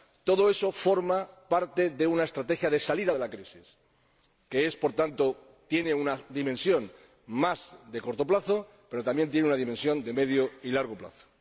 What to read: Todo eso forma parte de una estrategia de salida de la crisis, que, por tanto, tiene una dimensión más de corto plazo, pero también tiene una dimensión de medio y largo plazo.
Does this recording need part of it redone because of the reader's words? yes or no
no